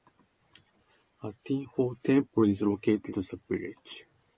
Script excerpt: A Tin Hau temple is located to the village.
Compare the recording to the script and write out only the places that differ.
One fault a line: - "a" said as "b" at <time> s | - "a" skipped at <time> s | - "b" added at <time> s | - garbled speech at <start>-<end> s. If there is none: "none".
none